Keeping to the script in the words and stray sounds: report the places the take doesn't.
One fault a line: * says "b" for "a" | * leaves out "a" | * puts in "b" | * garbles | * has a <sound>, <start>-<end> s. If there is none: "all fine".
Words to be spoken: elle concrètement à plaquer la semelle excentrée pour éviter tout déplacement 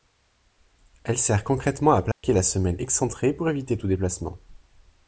* puts in "sert"
* has a dropout, 2.1-2.2 s